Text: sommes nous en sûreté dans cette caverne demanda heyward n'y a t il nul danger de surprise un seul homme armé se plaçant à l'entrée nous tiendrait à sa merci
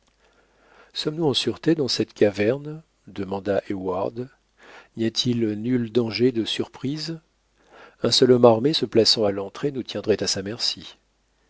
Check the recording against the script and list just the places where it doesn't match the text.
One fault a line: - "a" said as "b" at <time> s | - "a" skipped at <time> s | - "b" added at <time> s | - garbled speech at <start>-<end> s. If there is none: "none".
none